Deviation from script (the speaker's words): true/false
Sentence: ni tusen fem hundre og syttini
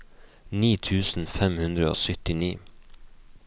false